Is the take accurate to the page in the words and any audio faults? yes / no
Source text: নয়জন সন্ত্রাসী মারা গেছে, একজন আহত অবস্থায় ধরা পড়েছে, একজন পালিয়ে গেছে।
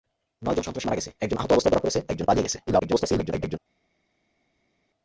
no